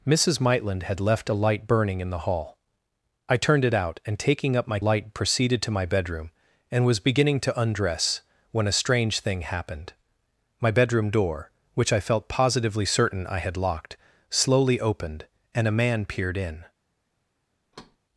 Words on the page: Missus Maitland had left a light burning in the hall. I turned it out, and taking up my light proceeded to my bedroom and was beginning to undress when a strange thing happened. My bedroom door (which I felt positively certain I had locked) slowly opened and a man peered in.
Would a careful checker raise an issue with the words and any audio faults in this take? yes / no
yes